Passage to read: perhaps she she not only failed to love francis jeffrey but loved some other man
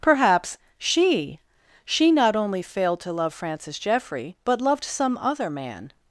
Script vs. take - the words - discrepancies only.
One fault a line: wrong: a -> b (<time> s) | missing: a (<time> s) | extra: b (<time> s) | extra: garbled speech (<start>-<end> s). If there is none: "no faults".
no faults